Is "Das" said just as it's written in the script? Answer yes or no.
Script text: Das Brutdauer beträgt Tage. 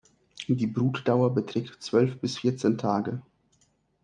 no